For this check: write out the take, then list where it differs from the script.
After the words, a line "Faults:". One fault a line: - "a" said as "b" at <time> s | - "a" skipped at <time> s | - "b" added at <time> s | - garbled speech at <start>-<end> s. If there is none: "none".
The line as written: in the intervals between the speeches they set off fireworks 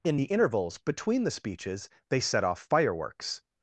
in the intervals between the speeches they set off fireworks
Faults:
none